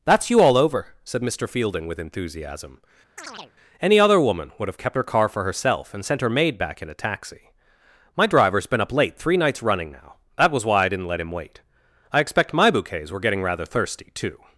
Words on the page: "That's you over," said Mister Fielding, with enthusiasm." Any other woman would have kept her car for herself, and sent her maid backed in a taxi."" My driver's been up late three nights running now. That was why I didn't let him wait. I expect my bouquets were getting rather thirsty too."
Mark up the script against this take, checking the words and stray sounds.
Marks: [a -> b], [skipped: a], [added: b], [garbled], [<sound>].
"That's you [added: all] over," said Mister Fielding, with enthusiasm." [chirp] Any other woman would have kept her car for herself, and sent her maid [backed -> back] in a taxi."" My driver's been up late three nights running now. That was why I didn't let him wait. I expect my bouquets were getting rather thirsty too."